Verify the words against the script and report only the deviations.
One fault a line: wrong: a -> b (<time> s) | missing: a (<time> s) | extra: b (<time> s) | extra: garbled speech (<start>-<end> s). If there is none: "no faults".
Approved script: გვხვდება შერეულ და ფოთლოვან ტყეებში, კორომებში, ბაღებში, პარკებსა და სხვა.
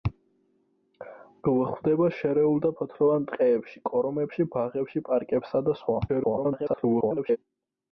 extra: garbled speech (6.1-7.4 s)